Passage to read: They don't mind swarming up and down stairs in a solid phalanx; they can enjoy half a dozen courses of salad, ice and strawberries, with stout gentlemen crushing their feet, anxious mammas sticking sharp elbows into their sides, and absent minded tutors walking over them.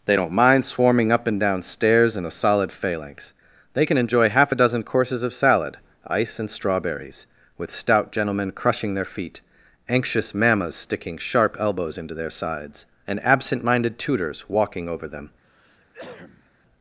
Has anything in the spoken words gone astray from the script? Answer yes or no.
no